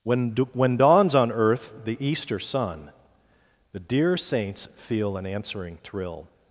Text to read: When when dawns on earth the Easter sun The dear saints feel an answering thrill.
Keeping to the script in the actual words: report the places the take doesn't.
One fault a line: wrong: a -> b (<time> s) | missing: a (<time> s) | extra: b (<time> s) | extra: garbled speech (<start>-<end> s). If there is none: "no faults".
no faults